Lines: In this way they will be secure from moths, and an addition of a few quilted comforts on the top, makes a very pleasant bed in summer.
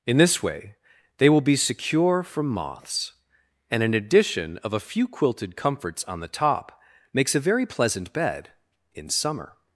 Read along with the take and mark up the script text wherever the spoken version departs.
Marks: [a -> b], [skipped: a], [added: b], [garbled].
In this way they will be secure from moths, and an addition of a few quilted comforts on the top, makes a very pleasant bed in summer.